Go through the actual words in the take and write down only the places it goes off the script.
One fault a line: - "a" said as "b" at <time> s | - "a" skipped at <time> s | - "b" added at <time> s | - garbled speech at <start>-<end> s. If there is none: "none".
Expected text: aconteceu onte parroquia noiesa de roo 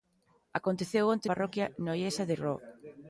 none